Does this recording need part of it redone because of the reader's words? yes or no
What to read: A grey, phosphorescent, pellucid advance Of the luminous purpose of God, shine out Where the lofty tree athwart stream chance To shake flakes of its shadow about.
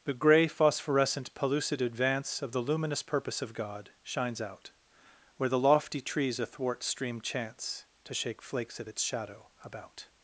yes